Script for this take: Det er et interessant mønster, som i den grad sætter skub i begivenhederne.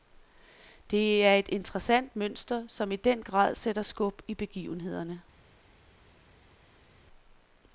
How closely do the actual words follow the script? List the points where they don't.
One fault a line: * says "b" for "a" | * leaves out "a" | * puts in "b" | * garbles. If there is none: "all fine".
all fine